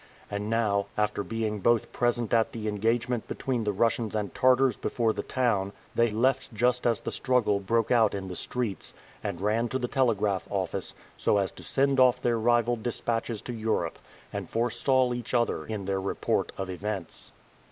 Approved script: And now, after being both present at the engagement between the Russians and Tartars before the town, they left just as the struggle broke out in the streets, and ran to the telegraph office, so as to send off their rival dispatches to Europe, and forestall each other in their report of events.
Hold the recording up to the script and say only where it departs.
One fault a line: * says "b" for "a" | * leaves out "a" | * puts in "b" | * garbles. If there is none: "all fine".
all fine